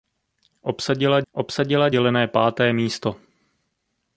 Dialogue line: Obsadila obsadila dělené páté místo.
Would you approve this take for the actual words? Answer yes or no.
yes